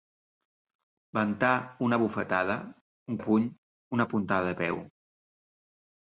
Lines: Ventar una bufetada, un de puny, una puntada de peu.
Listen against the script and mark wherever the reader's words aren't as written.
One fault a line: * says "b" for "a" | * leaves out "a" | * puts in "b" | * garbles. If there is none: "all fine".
all fine